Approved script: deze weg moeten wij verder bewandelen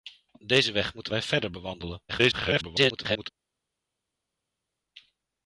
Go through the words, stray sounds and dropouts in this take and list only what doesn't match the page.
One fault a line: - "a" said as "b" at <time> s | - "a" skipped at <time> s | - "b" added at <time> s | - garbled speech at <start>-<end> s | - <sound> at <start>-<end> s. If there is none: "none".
- garbled speech at 2.1-3.3 s